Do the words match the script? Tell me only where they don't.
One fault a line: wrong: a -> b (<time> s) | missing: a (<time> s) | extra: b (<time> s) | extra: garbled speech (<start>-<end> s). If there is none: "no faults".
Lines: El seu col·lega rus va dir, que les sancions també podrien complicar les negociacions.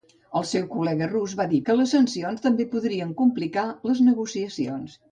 no faults